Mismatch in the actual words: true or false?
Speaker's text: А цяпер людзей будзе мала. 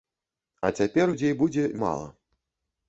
false